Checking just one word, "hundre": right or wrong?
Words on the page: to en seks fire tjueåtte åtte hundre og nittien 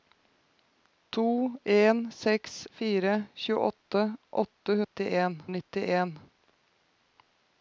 wrong